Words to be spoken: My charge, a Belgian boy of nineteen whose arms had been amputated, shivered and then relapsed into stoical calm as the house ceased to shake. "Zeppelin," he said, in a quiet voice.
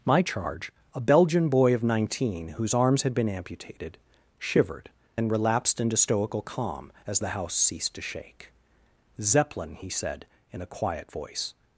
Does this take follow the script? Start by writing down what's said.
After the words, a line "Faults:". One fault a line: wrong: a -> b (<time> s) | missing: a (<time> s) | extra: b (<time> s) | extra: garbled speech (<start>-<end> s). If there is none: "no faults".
My charge, a Belgian boy of nineteen whose arms had been amputated, shivered then relapsed into stoical calm as the house ceased to shake. "Zeppelin," he said, in a quiet voice.
Faults:
missing: and (4.9 s)